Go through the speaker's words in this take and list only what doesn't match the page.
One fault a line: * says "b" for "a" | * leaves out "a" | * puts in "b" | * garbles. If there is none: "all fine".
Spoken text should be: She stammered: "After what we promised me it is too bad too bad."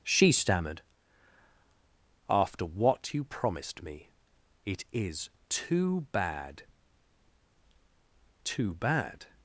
* says "you" for "we"